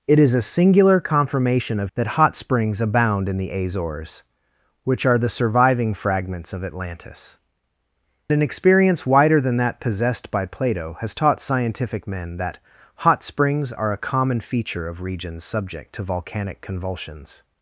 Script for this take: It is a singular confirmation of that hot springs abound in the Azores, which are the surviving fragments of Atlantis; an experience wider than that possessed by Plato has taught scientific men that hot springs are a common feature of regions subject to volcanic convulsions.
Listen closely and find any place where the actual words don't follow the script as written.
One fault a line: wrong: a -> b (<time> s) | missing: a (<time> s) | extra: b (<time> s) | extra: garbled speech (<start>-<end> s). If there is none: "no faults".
no faults